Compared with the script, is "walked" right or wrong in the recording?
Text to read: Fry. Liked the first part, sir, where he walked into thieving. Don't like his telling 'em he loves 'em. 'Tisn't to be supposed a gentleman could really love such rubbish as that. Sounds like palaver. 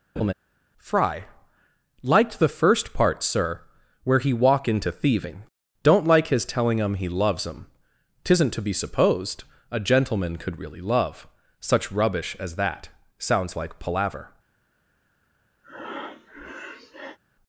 wrong